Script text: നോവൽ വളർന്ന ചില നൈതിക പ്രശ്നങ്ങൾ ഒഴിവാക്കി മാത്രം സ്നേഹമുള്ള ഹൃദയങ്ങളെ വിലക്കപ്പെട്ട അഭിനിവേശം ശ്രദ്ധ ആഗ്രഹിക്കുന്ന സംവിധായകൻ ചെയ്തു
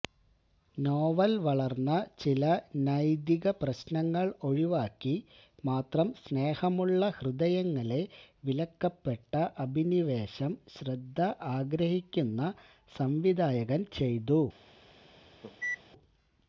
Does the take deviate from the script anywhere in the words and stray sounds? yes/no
yes